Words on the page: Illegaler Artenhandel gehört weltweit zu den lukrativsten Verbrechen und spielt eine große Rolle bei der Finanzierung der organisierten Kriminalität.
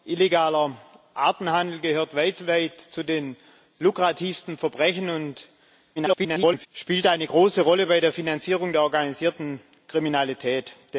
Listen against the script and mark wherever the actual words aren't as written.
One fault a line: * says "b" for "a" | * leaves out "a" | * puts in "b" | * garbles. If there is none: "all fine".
* garbles